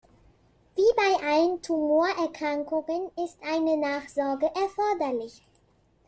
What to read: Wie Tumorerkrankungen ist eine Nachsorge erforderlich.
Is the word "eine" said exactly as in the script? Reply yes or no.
yes